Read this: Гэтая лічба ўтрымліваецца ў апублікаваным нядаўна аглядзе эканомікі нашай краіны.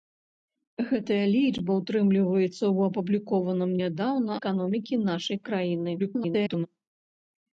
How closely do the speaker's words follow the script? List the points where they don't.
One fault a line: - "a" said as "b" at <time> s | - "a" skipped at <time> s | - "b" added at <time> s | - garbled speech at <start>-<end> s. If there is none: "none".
- "аглядзе" skipped at 4.3 s
- garbled speech at 6.0-6.7 s